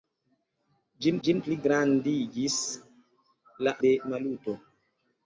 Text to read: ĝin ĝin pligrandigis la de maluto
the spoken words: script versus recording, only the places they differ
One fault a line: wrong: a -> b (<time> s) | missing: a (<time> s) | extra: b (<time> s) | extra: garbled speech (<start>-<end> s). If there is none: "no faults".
no faults